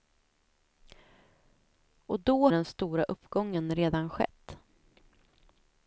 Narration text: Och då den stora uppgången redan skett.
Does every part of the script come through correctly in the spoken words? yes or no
yes